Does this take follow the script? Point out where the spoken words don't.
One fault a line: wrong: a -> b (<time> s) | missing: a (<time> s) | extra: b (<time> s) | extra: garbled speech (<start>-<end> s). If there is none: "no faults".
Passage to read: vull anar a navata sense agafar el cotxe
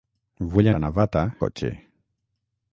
missing: anar (0.7 s)
missing: sense agafar el (1.2 s)